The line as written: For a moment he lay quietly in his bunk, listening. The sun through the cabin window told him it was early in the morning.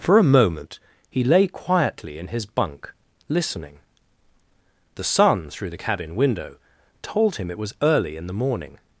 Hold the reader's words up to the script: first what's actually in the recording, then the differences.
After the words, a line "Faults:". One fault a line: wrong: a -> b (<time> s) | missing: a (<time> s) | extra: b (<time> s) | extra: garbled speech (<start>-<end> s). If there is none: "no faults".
For a moment he lay quietly in his bunk, listening. The sun through the cabin window told him it was early in the morning.
Faults:
no faults